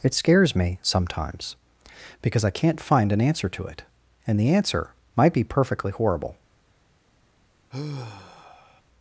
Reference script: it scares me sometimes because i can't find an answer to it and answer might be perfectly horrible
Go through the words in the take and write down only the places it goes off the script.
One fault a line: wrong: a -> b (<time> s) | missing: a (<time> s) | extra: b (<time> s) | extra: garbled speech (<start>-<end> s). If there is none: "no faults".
extra: the (4.4 s)